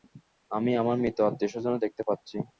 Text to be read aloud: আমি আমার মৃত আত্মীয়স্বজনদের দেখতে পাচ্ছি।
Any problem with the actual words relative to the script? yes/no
no